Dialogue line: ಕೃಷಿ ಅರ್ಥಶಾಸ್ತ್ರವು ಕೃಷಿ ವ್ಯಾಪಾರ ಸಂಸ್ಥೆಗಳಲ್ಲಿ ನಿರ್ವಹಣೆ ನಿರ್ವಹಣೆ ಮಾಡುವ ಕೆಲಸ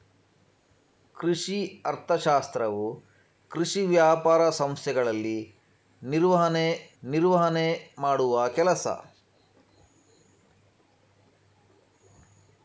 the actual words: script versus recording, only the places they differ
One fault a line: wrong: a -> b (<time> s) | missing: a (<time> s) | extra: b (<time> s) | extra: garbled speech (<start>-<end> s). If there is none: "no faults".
no faults